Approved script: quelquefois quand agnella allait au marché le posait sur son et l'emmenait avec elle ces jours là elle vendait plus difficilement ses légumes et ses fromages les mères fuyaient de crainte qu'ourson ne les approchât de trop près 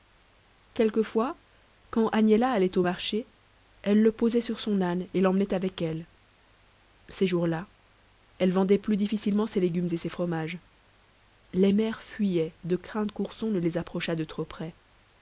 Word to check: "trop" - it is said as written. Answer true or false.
true